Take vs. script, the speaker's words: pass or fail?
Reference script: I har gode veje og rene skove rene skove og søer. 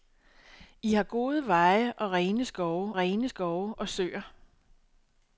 pass